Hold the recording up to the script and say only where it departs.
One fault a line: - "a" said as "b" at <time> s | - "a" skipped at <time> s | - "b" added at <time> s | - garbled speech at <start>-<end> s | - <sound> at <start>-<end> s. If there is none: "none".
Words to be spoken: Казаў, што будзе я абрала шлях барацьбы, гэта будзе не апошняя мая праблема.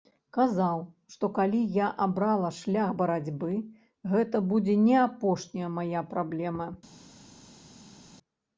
- "будзе" said as "калі" at 1.4 s